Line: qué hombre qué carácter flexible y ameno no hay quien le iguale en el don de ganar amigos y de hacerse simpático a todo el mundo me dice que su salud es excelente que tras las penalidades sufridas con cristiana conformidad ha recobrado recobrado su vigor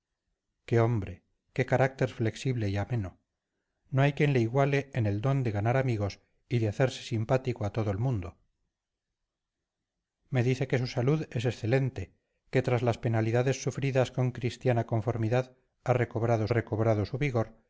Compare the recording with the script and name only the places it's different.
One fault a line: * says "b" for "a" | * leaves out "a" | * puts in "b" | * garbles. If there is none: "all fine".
all fine